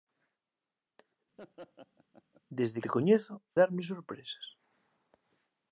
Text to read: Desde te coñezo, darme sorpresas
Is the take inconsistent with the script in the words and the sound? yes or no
yes